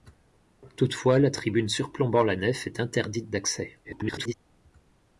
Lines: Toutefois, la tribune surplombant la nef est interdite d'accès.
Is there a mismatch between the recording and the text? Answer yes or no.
yes